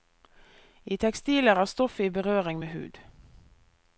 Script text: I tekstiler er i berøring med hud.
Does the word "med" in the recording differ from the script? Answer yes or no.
no